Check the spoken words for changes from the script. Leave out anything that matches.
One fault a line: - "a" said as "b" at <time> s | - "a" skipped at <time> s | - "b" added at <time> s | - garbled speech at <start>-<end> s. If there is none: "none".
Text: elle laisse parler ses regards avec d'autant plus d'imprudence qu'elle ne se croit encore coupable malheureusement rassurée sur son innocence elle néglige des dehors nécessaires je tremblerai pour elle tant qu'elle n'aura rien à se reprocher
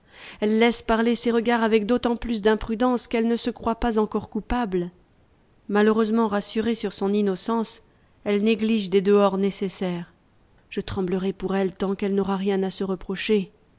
- "pas" added at 3.8 s